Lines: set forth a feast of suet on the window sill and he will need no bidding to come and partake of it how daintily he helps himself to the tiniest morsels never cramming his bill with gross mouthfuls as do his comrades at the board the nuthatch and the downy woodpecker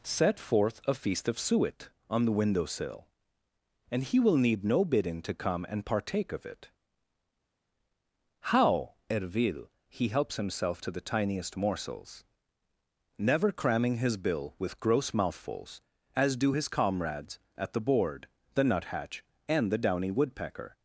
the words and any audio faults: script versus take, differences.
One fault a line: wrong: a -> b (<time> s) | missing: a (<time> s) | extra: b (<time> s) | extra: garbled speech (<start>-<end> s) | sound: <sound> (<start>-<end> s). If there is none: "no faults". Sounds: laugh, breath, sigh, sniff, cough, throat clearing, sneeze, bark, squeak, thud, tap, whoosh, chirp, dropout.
wrong: daintily -> erville (9.1 s)